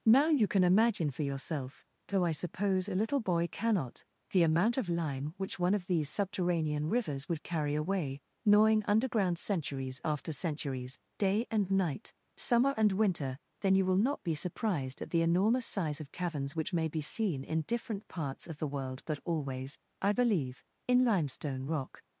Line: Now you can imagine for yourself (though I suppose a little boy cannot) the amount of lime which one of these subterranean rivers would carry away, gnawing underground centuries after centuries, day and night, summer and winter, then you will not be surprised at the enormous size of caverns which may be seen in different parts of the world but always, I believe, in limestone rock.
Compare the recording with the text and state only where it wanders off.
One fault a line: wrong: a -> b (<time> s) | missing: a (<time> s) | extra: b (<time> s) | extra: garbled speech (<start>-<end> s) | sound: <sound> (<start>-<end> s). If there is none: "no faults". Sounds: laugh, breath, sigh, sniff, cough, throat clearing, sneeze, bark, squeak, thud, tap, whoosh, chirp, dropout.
no faults